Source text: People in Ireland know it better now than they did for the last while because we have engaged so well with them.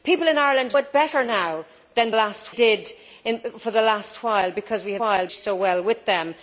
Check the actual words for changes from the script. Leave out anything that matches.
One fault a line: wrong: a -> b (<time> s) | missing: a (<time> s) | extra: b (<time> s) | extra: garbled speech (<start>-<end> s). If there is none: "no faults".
missing: know (0.8 s)
wrong: they -> last (2.1 s)
wrong: engaged -> while (5.0 s)